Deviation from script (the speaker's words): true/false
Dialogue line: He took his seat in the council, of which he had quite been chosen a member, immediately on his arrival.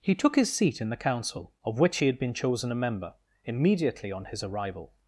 true